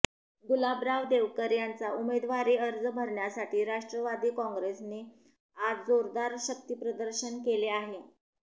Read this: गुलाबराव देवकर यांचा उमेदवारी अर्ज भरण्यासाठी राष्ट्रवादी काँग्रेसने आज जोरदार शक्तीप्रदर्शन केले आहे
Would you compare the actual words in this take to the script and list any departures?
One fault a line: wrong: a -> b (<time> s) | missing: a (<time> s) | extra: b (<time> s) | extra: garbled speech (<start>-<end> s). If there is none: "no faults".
no faults